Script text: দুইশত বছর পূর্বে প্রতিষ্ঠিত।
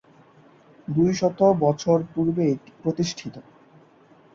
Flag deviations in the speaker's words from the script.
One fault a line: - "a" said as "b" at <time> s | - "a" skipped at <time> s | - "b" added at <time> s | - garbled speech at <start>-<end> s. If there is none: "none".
none